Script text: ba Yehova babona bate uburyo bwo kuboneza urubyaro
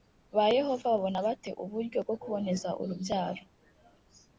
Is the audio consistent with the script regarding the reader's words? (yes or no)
yes